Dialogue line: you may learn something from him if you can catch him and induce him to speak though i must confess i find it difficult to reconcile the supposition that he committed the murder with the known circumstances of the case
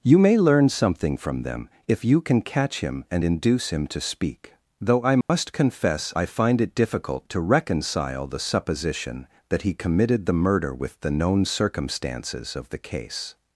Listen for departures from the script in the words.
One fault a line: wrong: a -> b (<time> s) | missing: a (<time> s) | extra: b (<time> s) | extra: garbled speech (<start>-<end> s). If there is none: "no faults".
wrong: him -> them (1.4 s)